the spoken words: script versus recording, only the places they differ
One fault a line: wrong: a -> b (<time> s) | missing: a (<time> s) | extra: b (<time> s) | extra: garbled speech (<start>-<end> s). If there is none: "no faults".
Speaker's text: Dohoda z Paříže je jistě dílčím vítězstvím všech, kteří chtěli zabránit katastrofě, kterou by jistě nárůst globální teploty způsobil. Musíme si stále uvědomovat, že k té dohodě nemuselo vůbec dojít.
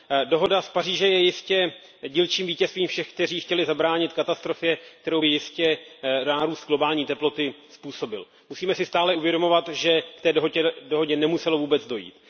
no faults